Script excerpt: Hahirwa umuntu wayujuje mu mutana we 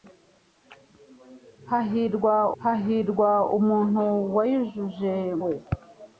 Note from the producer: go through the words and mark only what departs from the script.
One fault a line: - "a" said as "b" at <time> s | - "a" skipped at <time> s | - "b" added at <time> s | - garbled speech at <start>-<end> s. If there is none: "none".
- "hahirwa" added at 2.6 s
- "mu mutana" skipped at 5.1 s